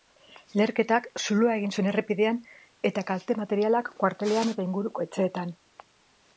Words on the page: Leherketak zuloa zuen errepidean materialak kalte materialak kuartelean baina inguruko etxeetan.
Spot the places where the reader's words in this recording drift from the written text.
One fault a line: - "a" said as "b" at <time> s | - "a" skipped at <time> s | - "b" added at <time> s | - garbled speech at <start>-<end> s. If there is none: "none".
- "egin" added at 1.6 s
- "materialak" said as "eta" at 2.9 s
- "baina" said as "eta" at 4.5 s